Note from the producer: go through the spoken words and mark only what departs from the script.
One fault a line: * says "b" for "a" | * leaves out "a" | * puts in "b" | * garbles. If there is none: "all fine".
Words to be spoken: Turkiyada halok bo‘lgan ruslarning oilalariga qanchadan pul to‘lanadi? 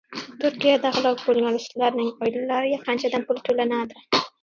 all fine